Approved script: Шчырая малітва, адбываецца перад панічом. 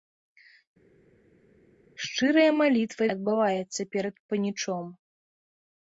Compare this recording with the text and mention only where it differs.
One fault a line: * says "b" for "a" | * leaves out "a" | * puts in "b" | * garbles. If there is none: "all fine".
all fine